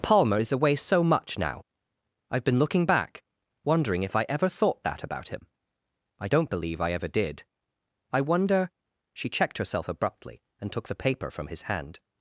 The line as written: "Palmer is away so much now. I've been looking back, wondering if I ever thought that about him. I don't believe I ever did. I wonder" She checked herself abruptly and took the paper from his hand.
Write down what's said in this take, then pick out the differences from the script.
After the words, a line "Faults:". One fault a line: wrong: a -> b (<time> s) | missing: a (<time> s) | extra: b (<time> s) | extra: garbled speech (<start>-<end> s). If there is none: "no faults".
"Palmer is away so much now. I've been looking back, wondering if I ever thought that about him. I don't believe I ever did. I wonder" She checked herself abruptly and took the paper from his hand.
Faults:
no faults